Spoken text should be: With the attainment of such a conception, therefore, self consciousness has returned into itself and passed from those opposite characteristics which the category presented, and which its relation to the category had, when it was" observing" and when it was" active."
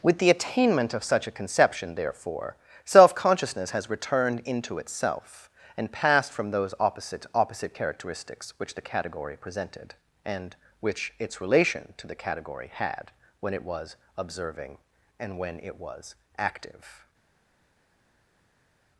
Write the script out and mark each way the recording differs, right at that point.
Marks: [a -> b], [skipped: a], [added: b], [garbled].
With the attainment of such a conception, therefore, self consciousness has returned into itself and passed from those opposite [added: opposite] characteristics which the category presented, and which its relation to the category had, when it was" observing" and when it was" active."